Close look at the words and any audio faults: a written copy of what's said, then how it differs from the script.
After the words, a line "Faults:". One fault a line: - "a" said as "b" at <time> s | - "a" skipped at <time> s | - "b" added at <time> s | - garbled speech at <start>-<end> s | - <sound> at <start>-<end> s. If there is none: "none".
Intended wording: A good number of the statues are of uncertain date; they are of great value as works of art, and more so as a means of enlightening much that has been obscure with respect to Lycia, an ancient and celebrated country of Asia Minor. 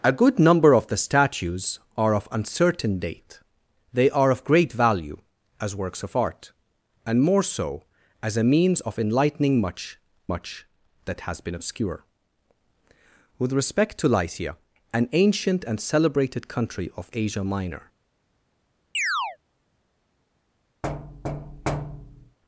A good number of the statues are of uncertain date; they are of great value as works of art, and more so as a means of enlightening much much that has been obscure with respect to Lycia, an ancient and celebrated country of Asia Minor.
Faults:
- "much" added at 10.3 s
- chirp at 18.9-19.4 s
- thud at 20.8-22.4 s